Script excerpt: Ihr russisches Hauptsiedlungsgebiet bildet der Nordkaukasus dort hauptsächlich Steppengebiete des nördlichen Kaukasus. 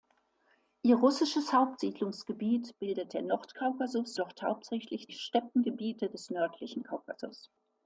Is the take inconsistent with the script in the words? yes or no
no